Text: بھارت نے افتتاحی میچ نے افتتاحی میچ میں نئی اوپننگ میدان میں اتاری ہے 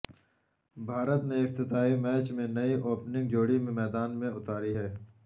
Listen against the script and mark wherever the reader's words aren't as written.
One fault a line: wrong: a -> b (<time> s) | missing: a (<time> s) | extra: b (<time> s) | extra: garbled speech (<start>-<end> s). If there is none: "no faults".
missing: نے افتتاحی میچ (2.3 s)
extra: جوڑی (3.3 s)